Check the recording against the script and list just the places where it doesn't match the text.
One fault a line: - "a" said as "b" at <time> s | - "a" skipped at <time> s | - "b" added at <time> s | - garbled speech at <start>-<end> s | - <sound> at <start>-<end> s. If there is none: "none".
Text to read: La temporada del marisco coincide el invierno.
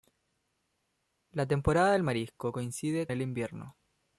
none